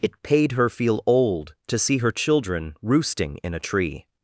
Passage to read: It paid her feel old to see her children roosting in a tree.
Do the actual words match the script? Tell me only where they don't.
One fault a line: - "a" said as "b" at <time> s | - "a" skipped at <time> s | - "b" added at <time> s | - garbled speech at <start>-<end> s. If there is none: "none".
none